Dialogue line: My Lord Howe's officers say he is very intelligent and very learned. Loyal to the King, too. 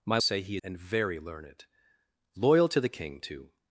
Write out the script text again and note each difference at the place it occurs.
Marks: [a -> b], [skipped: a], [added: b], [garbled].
My [skipped: Lord Howe's officers] say he [skipped: is very intelligent] and very learned. Loyal to the King, too.